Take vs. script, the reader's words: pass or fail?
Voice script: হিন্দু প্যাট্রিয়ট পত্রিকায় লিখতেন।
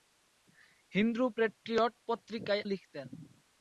pass